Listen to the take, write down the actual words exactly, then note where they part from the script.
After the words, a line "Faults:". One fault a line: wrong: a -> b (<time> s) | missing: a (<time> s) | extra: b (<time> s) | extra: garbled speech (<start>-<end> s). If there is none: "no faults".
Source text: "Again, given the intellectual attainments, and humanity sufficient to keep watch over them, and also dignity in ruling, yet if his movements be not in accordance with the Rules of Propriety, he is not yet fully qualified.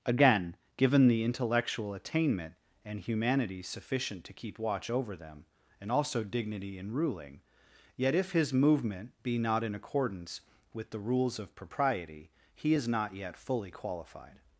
"Again, given the intellectual attainment, and humanity sufficient to keep watch over them, and also dignity in ruling, yet if his movement be not in accordance with the Rules of Propriety, he is not yet fully qualified.
Faults:
wrong: attainments -> attainment (1.9 s)
wrong: movements -> movement (8.5 s)